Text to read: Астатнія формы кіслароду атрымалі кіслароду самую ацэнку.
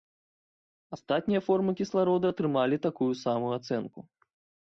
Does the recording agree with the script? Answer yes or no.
no